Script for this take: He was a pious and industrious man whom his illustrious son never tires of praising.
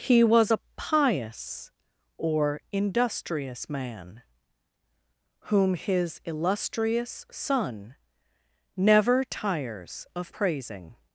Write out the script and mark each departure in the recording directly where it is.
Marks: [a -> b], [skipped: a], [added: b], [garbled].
He was a pious [and -> or] industrious man whom his illustrious son never tires of praising.